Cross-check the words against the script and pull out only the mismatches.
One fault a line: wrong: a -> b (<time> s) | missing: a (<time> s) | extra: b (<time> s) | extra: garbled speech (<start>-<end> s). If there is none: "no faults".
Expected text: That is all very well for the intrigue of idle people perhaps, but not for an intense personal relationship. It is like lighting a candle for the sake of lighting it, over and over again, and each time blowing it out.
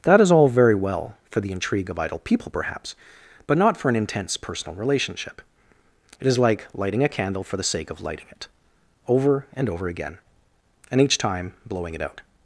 no faults